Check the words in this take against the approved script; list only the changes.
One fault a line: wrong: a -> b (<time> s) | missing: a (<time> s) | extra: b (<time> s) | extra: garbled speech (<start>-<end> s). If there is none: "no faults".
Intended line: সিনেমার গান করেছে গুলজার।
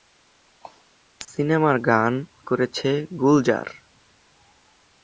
no faults